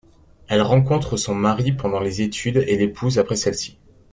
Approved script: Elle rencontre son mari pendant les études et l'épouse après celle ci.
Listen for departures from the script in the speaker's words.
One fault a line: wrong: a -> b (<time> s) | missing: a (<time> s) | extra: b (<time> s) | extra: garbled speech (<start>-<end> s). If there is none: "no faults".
no faults